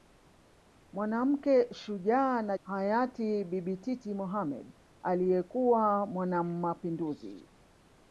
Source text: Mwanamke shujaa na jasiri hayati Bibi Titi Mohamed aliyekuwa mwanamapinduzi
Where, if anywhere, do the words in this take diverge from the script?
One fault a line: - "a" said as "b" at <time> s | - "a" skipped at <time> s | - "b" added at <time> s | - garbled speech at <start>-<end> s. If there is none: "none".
- "jasiri" skipped at 2.6 s